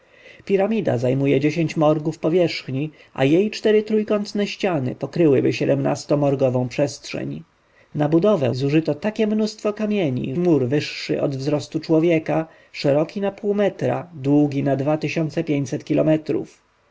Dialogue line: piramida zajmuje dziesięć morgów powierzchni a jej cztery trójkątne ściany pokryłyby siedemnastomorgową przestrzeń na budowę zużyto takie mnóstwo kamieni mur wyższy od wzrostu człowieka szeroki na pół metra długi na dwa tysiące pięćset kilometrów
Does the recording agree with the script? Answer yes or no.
yes